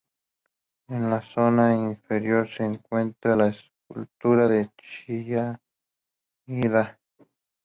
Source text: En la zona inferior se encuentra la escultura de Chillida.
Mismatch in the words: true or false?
false